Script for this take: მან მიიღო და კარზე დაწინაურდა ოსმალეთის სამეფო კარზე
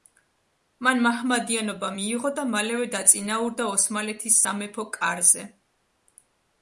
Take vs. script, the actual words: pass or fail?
fail